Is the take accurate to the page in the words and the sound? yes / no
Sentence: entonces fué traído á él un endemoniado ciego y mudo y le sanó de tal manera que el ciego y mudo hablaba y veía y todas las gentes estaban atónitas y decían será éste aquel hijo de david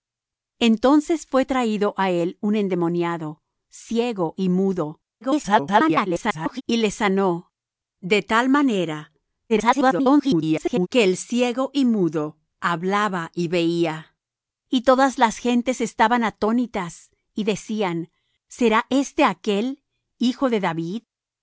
no